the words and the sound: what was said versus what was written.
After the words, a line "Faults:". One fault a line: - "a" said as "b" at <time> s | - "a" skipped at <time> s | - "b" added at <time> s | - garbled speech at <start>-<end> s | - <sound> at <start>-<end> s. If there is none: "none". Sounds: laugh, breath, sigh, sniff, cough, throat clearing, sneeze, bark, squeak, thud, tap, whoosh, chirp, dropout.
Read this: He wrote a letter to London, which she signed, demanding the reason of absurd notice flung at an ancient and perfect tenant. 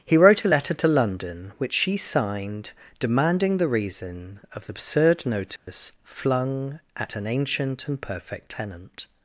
He wrote a letter to London, which she signed, demanding the reason of absurd notice flung at an ancient and perfect tenant.
Faults:
- dropout at 5.6-5.7 s